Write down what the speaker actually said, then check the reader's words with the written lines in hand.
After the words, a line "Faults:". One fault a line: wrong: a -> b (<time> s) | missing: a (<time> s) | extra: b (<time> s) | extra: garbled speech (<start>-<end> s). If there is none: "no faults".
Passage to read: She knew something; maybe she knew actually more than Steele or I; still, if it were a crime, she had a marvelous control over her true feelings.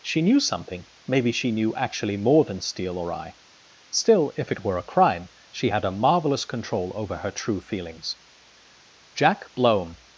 She knew something; maybe she knew actually more than Steele or I; still, if it were a crime, she had a marvelous control over her true feelings. Jack Blome
Faults:
extra: Jack Blome (9.2 s)